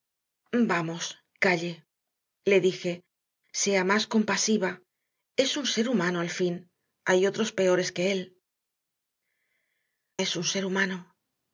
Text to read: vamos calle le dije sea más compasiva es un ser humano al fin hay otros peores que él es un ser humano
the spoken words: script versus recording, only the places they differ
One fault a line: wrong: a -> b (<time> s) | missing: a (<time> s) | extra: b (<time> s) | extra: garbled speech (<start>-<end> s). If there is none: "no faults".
no faults